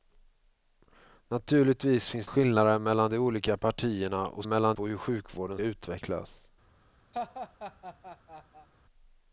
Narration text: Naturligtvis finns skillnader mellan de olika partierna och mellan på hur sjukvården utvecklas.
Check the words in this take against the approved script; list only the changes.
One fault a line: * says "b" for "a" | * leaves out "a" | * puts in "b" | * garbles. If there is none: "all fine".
all fine